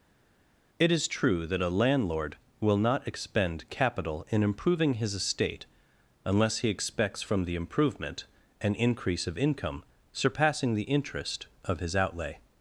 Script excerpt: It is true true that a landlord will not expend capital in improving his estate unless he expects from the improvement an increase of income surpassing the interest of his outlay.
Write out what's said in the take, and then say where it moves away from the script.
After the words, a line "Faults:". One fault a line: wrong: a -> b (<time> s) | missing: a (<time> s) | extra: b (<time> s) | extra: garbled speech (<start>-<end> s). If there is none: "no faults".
It is true that a landlord will not expend capital in improving his estate unless he expects from the improvement an increase of income surpassing the interest of his outlay.
Faults:
missing: true (1.5 s)